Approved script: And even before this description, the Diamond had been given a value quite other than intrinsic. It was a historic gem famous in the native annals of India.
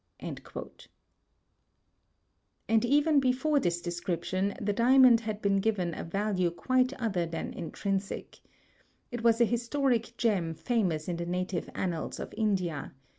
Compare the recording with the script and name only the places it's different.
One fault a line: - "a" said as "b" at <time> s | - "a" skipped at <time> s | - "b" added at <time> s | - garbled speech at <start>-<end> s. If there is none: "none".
none